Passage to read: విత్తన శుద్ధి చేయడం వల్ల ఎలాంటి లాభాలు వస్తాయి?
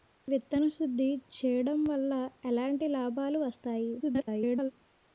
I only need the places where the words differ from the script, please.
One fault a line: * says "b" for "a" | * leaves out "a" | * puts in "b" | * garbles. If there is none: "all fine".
* garbles